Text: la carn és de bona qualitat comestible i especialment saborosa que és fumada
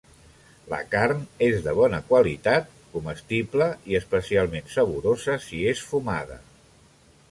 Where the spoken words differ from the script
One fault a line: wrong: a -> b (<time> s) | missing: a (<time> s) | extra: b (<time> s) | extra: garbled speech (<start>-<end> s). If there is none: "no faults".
wrong: que -> si (5.5 s)